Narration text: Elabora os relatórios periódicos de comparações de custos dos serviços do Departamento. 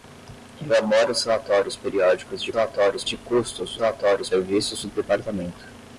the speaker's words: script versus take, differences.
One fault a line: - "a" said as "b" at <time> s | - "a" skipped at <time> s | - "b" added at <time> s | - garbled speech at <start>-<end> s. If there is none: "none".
- "comparações" said as "relatórios" at 2.5 s
- "dos" said as "relatórios" at 3.8 s